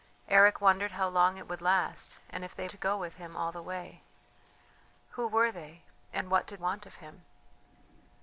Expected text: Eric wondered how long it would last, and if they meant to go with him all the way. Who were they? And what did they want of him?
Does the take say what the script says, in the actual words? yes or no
no